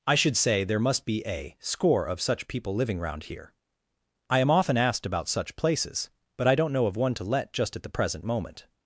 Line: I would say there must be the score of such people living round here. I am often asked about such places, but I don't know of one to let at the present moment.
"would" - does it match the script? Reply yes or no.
no